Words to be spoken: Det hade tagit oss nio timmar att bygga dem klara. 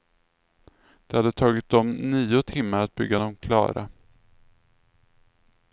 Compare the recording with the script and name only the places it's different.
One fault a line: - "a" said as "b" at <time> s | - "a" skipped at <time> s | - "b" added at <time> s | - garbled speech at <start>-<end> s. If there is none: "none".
- "oss" said as "dem" at 1.7 s